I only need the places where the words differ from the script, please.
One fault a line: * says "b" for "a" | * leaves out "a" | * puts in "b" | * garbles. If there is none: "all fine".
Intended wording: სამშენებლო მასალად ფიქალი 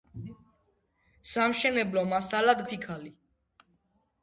all fine